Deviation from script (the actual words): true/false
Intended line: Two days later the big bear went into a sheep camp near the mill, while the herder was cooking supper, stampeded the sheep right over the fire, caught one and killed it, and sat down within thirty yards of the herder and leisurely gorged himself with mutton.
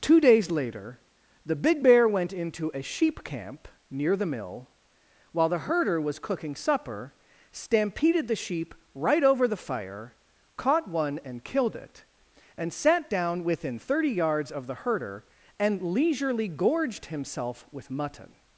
false